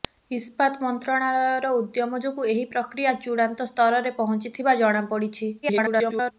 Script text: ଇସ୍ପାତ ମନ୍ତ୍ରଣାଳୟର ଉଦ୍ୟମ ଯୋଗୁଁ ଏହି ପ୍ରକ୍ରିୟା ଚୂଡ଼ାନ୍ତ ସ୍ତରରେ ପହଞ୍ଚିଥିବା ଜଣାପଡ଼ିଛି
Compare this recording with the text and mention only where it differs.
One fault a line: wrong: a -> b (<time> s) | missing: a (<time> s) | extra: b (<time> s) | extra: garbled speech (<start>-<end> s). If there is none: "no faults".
extra: garbled speech (5.6-6.3 s)